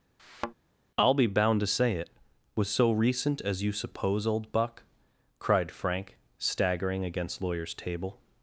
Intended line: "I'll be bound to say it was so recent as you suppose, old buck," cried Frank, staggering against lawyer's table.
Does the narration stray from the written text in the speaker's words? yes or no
no